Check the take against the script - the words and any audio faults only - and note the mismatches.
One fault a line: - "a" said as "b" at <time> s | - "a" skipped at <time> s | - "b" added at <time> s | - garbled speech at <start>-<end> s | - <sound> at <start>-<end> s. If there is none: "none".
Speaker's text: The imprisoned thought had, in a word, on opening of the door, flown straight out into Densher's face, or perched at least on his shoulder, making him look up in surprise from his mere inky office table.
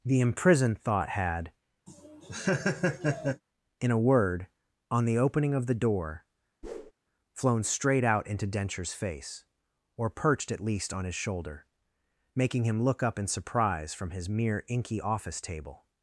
- laugh at 1.9-3.4 s
- "the" added at 5.0 s
- whoosh at 6.6-6.9 s